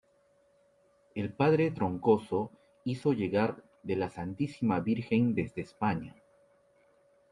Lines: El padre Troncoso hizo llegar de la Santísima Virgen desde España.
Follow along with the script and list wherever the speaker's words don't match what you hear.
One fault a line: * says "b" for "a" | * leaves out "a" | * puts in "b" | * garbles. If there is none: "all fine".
all fine